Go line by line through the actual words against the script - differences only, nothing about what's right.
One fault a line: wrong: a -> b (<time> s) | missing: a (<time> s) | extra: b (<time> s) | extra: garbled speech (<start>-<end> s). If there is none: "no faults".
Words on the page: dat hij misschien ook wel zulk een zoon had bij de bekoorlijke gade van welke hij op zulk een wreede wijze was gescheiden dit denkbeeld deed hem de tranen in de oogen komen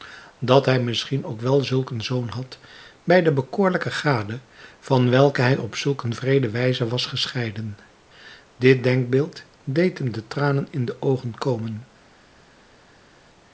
no faults